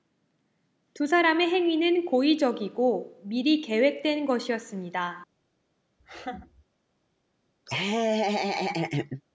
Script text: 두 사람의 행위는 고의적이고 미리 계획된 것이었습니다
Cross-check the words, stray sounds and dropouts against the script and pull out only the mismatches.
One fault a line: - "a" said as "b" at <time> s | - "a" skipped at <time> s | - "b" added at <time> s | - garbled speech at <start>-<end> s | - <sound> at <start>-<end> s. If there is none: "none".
- laugh at 6.0-6.6 s
- laugh at 7.7-9.2 s